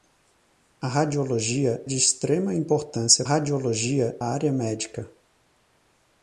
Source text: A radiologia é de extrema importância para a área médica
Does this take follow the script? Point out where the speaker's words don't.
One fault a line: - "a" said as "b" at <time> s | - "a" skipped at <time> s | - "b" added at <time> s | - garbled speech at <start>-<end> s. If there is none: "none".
- "é" skipped at 1.9 s
- "para" said as "radiologia" at 3.2 s